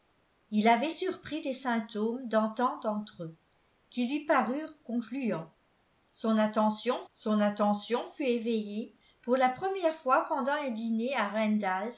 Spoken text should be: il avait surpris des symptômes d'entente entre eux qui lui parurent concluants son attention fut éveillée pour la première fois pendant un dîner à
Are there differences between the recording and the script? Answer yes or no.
yes